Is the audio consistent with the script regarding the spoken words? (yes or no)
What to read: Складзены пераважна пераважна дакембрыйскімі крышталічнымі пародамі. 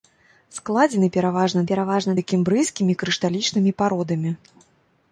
yes